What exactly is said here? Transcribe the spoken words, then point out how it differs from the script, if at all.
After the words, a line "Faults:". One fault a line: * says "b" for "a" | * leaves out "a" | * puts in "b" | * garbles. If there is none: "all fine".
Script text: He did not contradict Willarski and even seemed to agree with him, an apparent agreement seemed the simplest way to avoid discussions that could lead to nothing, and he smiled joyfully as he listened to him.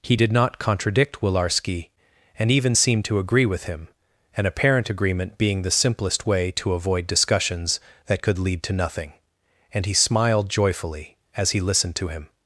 He did not contradict Willarski and even seemed to agree with him, an apparent agreement being the simplest way to avoid discussions that could lead to nothing, and he smiled joyfully as he listened to him.
Faults:
* says "being" for "seemed"